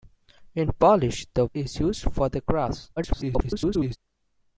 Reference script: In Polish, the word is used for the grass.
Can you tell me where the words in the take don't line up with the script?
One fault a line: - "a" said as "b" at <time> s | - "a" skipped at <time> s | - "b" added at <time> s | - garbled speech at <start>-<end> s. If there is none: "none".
- "word" skipped at 1.4 s
- garbled speech at 3.0-4.0 s